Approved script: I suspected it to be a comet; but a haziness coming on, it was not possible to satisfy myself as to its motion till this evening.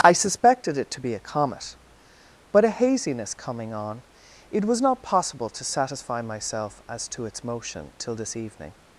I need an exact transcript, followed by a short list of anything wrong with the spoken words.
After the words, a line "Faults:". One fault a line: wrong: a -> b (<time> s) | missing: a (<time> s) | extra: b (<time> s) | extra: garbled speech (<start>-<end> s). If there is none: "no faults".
I suspected it to be a comet; but a haziness coming on, it was not possible to satisfy myself as to its motion till this evening.
Faults:
no faults